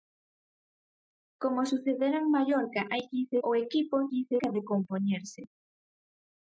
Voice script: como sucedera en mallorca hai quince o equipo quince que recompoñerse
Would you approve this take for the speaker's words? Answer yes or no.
yes